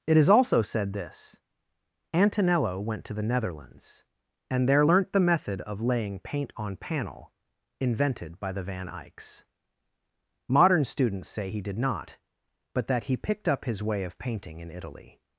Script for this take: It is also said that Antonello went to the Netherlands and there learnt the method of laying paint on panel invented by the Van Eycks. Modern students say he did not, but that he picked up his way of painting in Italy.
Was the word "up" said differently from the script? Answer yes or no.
no